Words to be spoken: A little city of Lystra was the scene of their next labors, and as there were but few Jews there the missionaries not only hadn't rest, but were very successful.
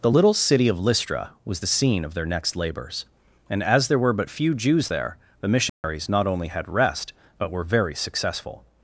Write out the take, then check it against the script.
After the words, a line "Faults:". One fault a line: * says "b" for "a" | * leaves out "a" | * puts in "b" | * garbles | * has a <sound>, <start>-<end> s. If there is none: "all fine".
The little city of Lystra was the scene of their next labors, and as there were but few Jews there the missionaries not only had rest, but were very successful.
Faults:
* says "The" for "A"
* has a dropout, 5.7-5.8 s
* says "had" for "hadn't"